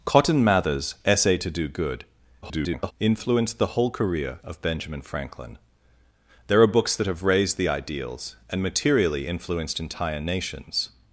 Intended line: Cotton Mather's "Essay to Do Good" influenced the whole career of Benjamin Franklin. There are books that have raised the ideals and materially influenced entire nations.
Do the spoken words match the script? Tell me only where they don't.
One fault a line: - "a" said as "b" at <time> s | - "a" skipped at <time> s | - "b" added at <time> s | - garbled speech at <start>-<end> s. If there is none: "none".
- garbled speech at 2.4-2.9 s